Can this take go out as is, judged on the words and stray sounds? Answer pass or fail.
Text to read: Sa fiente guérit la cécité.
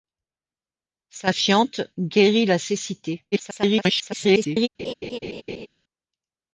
fail